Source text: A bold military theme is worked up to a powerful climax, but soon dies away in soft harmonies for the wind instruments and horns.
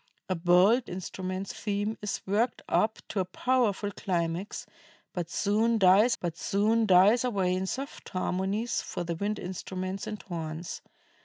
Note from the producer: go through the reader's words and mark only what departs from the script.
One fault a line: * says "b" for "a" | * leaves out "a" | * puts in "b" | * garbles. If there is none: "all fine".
* says "instruments" for "military"
* puts in "but soon dies"